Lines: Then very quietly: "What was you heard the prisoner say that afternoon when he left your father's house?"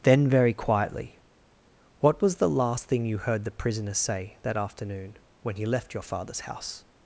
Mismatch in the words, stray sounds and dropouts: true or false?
true